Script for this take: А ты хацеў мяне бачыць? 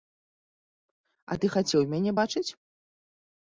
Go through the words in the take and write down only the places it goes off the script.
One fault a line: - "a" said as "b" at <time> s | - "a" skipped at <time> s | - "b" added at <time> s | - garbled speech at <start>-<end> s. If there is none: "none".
none